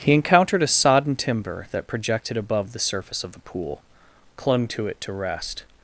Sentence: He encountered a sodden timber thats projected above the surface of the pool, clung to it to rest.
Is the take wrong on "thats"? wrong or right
wrong